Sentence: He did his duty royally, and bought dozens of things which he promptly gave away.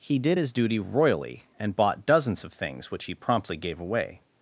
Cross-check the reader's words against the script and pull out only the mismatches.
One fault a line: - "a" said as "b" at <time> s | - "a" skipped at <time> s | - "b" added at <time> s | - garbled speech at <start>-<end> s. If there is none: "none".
none